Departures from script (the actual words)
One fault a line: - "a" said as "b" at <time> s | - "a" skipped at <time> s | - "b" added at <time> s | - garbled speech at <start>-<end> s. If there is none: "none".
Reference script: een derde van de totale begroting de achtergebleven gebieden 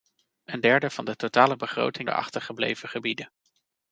none